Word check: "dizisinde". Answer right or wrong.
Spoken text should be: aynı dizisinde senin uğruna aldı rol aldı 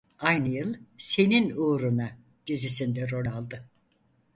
wrong